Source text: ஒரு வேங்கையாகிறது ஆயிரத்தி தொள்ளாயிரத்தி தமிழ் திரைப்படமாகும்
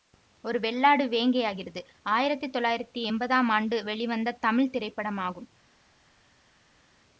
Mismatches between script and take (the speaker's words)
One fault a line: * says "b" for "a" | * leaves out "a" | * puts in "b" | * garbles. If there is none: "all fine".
* puts in "வெள்ளாடு"
* puts in "எம்பதாம் ஆண்டு வெளிவந்த"